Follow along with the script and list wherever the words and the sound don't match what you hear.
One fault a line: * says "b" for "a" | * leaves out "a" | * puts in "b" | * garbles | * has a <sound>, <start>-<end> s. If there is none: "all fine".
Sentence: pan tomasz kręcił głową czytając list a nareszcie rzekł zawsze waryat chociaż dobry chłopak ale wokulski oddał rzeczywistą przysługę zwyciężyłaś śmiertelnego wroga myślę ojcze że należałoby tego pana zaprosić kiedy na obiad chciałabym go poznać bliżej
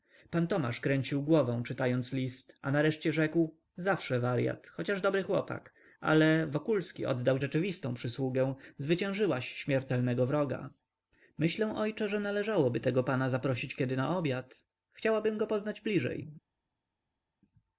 all fine